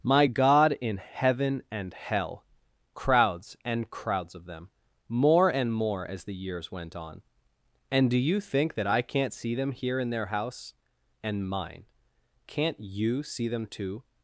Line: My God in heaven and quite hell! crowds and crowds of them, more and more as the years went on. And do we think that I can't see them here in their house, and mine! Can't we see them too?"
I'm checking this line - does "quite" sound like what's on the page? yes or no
no